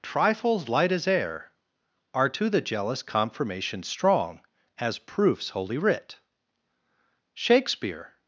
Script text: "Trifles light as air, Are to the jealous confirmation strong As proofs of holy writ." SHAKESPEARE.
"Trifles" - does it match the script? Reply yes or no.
yes